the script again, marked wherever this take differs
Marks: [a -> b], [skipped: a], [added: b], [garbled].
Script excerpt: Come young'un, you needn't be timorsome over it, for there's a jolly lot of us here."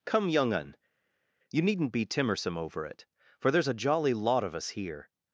Come young'un, you needn't be timorsome over it, for there's a jolly lot of us here."